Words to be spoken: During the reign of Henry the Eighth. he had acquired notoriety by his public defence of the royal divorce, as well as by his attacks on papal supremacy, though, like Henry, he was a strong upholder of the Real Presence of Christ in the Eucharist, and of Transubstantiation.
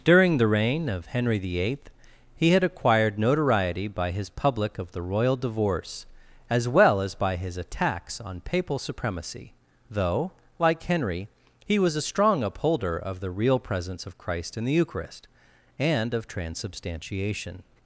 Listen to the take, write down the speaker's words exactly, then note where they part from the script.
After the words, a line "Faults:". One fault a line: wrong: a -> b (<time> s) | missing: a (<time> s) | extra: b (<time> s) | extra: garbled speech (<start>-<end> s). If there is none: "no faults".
During the reign of Henry the Eighth. he had acquired notoriety by his public of the royal divorce, as well as by his attacks on papal supremacy, though, like Henry, he was a strong upholder of the Real Presence of Christ in the Eucharist, and of Transubstantiation.
Faults:
missing: defence (4.8 s)